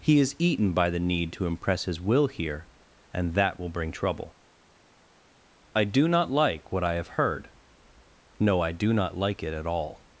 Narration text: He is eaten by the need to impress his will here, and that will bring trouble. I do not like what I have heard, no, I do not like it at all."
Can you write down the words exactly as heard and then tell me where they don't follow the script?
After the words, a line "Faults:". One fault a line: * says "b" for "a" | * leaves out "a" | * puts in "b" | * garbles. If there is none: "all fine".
He is eaten by the need to impress his will here, and that will bring trouble. I do not like what I have heard, no, I do not like it at all."
Faults:
all fine